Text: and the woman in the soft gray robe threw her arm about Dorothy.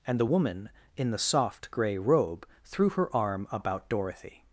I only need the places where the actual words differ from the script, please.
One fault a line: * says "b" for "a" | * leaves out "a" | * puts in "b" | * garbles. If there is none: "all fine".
all fine